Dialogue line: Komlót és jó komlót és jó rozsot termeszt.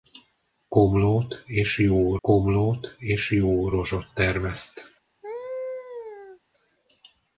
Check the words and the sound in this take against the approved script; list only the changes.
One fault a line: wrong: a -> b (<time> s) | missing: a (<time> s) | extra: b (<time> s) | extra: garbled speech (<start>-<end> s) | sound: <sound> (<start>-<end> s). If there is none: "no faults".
sound: laugh (5.2-6.4 s)